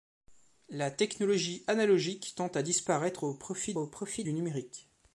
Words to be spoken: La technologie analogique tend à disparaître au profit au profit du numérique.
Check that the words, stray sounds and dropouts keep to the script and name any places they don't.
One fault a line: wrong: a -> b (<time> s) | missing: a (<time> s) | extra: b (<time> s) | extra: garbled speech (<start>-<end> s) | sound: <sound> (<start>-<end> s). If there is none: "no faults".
no faults